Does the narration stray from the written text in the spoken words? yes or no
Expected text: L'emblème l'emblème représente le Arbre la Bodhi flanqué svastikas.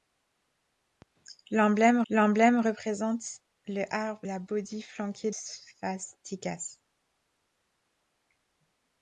no